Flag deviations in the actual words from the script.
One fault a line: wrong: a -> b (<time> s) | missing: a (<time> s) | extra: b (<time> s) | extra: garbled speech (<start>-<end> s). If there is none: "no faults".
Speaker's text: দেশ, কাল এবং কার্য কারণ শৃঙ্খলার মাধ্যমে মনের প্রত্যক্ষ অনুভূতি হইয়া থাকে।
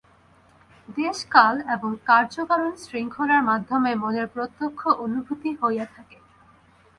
no faults